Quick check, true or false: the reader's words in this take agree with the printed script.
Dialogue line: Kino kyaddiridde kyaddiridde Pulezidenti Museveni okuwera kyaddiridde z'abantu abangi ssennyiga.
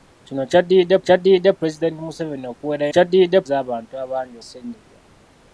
true